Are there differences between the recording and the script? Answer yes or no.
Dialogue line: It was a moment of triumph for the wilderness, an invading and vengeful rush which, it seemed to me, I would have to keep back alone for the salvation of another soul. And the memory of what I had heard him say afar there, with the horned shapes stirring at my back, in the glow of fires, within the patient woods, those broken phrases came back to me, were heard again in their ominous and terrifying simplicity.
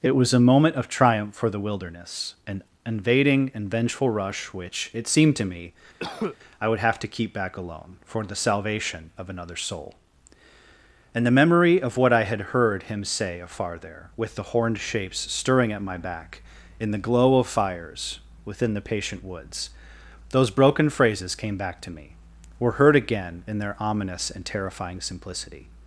no